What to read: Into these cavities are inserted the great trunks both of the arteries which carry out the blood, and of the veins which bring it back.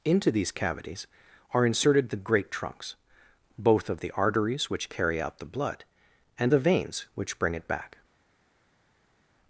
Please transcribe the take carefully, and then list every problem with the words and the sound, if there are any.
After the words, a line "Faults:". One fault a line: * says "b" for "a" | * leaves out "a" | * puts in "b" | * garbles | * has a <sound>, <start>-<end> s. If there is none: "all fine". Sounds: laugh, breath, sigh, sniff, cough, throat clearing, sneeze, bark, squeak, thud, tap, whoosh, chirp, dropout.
Into these cavities are inserted the great trunks both of the arteries which carry out the blood, and the veins which bring it back.
Faults:
* leaves out "of"